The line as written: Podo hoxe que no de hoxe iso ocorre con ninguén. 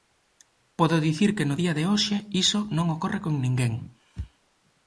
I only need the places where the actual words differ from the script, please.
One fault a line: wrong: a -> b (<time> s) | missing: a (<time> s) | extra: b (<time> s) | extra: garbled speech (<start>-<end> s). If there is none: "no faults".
wrong: hoxe -> dicir (1.1 s)
extra: día (1.6 s)
extra: non (2.8 s)